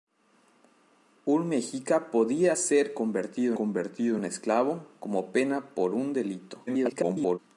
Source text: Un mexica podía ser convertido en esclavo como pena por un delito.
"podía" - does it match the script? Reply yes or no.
yes